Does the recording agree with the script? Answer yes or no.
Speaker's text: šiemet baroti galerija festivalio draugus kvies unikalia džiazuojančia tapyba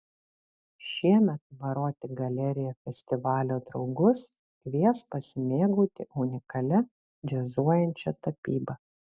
no